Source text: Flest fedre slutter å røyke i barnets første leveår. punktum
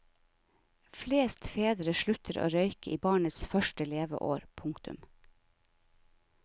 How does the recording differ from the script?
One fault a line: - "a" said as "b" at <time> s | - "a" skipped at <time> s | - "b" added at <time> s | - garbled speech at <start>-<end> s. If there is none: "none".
none